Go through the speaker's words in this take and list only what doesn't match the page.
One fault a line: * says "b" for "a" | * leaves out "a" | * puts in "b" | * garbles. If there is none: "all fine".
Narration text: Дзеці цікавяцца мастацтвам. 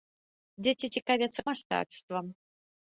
all fine